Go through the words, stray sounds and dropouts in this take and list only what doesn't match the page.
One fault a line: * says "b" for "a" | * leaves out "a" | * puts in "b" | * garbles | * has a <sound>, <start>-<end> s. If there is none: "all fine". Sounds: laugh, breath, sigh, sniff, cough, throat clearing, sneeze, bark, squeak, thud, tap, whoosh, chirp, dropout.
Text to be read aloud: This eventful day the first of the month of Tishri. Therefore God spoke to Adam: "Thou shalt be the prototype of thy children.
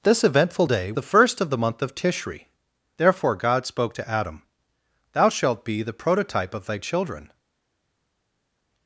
all fine